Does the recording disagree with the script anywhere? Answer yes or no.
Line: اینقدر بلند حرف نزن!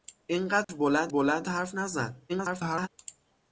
yes